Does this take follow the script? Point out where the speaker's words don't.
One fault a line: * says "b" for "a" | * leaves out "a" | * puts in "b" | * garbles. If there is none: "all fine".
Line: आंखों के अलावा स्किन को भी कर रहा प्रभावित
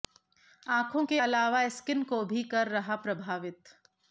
all fine